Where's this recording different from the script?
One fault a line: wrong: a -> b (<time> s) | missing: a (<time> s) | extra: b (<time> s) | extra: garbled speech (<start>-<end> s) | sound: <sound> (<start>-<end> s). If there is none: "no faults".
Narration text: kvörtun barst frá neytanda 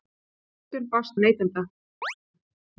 missing: frá (1.1 s)
sound: chirp (2.0-2.1 s)